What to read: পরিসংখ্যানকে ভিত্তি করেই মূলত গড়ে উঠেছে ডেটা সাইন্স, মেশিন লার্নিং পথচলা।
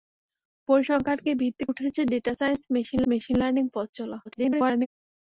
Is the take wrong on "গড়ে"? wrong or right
wrong